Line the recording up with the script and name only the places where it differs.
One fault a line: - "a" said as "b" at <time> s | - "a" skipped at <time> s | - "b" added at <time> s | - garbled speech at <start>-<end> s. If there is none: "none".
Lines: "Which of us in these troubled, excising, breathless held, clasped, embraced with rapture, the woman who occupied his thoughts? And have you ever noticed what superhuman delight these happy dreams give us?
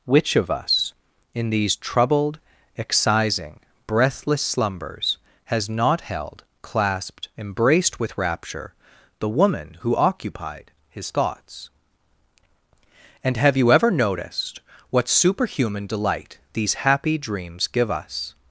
- "slumbers has not" added at 4.4 s